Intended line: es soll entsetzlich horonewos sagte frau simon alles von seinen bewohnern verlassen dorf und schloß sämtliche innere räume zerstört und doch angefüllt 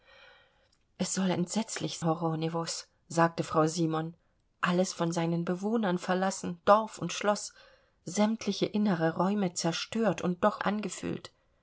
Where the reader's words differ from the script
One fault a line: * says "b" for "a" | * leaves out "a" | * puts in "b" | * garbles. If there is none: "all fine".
all fine